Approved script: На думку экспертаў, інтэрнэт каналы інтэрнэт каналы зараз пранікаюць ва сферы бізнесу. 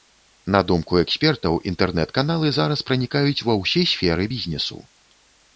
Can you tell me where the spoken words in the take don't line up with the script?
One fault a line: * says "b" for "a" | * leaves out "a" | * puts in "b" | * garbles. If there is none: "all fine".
* leaves out "інтэрнэт каналы"
* puts in "ўсе"